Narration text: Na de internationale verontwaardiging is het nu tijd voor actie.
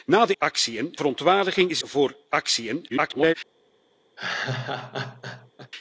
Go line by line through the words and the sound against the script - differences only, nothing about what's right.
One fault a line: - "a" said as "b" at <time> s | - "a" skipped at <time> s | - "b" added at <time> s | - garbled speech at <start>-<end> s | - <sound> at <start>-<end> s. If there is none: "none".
- "internationale" said as "actie" at 0.4 s
- "het nu tijd" skipped at 1.8 s
- garbled speech at 2.9-3.3 s
- laugh at 4.2-5.7 s